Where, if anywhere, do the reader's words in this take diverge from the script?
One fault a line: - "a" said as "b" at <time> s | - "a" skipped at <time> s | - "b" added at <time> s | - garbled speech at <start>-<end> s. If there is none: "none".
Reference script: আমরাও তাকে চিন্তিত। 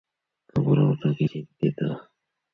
none